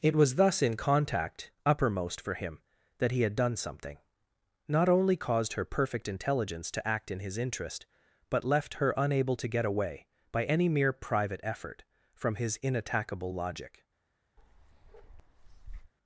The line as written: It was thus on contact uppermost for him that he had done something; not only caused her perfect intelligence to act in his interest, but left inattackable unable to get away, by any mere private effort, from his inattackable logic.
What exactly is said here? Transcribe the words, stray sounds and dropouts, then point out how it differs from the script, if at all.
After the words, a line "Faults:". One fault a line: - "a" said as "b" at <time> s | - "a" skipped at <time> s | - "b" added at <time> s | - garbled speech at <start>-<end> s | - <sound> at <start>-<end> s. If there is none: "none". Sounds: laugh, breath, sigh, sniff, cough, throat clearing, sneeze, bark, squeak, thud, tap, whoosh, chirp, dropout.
It was thus in contact uppermost for him that he had done something; not only caused her perfect intelligence to act in his interest, but left her unable to get away, by any mere private effort, from his inattackable logic.
Faults:
- "on" said as "in" at 0.6 s
- "inattackable" said as "her" at 8.8 s
- bark at 14.4-15.9 s